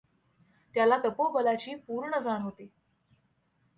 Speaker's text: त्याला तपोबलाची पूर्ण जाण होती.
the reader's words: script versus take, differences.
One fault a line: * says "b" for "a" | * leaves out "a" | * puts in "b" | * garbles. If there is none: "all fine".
all fine